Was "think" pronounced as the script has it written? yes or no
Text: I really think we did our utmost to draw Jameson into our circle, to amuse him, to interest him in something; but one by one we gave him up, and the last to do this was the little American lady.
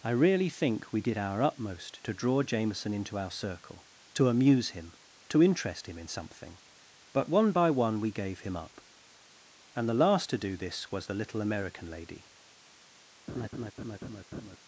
yes